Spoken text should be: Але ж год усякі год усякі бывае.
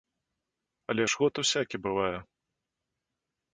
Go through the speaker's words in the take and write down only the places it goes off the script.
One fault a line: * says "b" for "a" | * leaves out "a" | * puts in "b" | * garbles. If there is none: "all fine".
* leaves out "год усякі"